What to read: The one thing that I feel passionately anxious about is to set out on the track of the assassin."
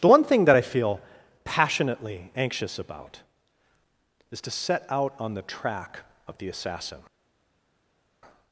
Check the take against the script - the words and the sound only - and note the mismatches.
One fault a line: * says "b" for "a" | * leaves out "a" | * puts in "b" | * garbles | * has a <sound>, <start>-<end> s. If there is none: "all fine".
all fine